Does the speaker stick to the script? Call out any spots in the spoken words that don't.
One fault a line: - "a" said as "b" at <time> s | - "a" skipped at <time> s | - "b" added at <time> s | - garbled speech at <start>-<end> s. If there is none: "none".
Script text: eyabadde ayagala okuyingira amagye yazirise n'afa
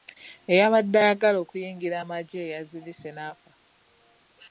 none